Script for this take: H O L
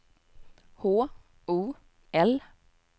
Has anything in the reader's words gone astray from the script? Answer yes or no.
no